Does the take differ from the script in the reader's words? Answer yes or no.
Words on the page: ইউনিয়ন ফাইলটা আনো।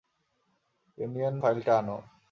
no